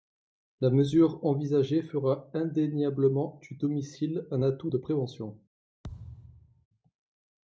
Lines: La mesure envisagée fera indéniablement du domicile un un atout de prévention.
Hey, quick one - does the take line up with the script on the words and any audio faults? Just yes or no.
no